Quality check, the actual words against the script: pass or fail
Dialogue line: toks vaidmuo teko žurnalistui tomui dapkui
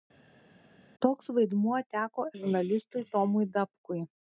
pass